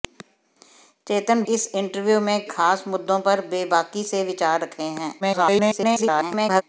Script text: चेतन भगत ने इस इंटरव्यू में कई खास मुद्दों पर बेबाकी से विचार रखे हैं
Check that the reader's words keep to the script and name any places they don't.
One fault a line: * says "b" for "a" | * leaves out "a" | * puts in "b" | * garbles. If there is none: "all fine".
* leaves out "भगत ने"
* leaves out "कई"
* garbles